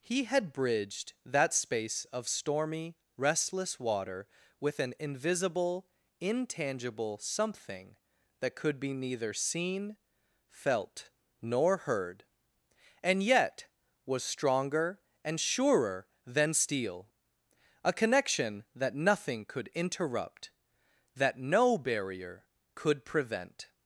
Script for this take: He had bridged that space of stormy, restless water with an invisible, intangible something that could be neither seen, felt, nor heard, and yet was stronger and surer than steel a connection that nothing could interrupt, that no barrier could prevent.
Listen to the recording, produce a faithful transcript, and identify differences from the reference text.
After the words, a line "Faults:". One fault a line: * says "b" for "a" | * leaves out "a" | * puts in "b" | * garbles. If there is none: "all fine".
He had bridged that space of stormy, restless water with an invisible, intangible something that could be neither seen, felt, nor heard, and yet was stronger and surer than steel a connection that nothing could interrupt, that no barrier could prevent.
Faults:
all fine